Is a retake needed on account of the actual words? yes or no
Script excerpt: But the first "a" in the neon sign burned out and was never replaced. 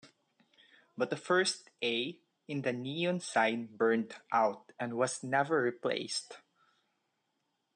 no